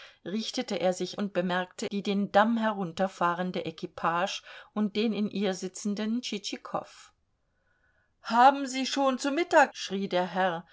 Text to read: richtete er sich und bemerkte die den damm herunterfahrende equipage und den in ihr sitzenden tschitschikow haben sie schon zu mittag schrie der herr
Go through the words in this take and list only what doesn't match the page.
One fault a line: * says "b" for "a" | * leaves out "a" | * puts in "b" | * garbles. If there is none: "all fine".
all fine